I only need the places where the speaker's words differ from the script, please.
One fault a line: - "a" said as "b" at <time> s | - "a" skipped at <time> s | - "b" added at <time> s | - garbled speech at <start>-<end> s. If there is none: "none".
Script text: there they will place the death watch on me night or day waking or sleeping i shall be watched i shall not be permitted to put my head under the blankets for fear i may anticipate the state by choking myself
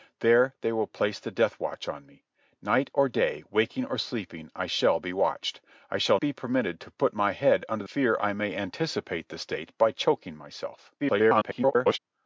- "not" skipped at 6.2 s
- "the blankets for" skipped at 7.8 s
- garbled speech at 11.0-12.0 s